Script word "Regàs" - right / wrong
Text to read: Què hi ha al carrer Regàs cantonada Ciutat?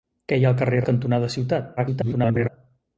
wrong